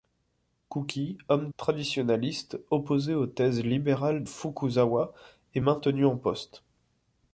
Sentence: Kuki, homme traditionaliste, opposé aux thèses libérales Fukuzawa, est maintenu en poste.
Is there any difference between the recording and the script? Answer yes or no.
no